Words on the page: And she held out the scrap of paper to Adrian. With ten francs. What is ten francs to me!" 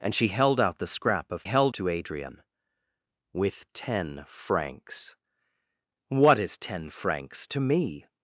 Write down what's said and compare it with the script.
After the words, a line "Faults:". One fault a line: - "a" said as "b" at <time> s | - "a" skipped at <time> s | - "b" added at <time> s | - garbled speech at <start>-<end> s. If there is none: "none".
And she held out the scrap of held to Adrian. With ten francs. What is ten francs to me!"
Faults:
- "paper" said as "held" at 1.4 s